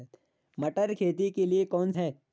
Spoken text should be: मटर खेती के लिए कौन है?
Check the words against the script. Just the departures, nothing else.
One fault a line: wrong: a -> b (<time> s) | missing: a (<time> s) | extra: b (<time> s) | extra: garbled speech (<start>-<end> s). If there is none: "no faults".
no faults